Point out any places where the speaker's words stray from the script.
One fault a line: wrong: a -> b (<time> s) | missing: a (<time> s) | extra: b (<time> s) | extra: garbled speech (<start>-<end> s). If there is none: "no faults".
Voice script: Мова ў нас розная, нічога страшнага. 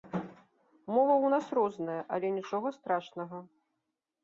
extra: але (2.2 s)